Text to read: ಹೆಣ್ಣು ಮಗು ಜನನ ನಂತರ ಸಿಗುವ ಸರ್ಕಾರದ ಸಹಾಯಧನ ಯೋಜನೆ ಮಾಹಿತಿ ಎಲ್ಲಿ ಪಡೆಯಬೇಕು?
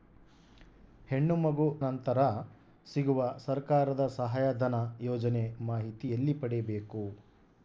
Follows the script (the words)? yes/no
no